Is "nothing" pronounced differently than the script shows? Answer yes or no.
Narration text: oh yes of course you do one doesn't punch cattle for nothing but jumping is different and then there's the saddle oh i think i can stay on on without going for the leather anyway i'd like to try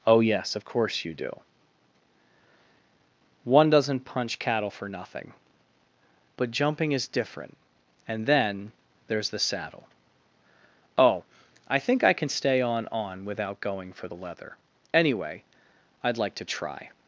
no